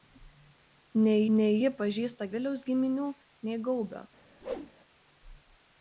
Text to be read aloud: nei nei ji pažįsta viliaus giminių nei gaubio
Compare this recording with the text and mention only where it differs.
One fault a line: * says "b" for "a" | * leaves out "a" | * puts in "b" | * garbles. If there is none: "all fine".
all fine